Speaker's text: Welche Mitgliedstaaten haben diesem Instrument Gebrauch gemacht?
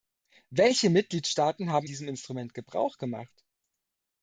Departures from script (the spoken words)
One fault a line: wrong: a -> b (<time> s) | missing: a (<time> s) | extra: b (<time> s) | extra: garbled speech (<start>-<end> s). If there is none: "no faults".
no faults